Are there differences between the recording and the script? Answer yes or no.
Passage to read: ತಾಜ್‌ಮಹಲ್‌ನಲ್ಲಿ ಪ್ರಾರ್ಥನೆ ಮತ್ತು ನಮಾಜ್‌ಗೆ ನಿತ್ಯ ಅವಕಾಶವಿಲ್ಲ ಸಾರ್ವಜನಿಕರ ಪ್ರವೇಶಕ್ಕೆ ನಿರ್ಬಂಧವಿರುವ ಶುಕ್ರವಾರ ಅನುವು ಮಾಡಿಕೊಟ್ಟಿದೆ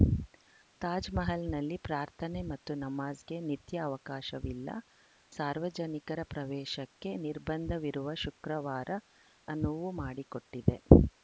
no